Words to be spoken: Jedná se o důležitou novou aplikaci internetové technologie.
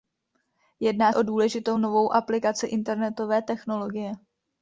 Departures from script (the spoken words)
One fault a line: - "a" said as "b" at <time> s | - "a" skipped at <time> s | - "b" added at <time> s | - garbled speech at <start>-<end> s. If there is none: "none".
- "se" skipped at 1.1 s